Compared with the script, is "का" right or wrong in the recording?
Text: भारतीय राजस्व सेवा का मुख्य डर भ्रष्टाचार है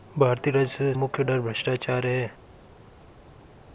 wrong